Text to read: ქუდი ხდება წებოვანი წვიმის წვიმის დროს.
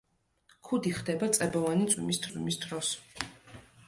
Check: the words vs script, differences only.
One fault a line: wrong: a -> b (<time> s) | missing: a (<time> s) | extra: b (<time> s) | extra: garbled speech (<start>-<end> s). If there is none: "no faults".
no faults